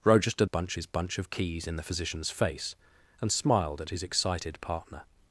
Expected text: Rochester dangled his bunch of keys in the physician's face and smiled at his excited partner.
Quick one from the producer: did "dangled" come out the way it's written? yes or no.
no